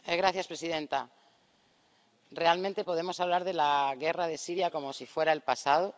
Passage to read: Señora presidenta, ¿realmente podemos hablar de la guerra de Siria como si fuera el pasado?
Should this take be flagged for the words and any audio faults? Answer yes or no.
no